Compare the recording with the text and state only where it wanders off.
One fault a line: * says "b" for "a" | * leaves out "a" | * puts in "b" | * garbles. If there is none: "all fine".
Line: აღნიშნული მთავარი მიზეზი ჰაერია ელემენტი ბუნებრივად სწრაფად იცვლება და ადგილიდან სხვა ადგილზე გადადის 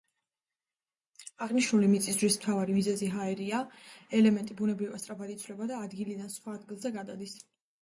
* puts in "მიწისძვრის"